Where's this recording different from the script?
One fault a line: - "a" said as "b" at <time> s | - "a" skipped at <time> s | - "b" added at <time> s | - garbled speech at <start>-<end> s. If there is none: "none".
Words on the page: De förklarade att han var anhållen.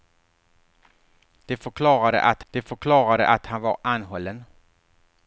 - "de förklarade att" added at 2.5 s